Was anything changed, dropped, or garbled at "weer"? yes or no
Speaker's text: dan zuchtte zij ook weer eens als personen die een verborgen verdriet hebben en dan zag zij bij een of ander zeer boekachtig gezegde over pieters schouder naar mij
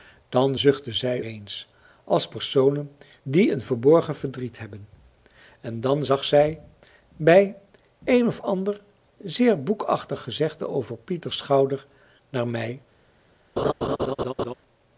yes